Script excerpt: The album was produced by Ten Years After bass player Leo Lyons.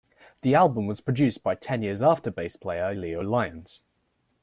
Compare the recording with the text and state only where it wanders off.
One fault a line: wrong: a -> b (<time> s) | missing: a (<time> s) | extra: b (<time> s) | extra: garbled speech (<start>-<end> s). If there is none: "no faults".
no faults